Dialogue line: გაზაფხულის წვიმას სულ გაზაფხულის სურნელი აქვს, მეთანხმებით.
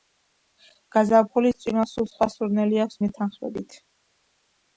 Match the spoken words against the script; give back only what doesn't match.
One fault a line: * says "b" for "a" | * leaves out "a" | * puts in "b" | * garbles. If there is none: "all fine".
* says "სხვა" for "გაზაფხულის"